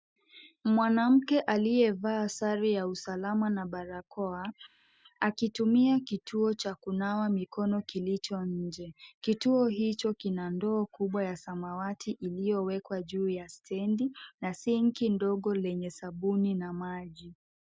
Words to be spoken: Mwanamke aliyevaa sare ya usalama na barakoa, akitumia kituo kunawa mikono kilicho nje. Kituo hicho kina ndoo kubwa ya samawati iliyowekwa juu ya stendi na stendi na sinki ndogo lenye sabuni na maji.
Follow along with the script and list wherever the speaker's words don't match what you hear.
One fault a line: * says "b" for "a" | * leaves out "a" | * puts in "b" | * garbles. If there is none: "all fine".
* puts in "cha"
* leaves out "stendi na"